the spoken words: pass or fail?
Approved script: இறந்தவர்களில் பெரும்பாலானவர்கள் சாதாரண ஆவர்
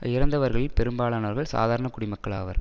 fail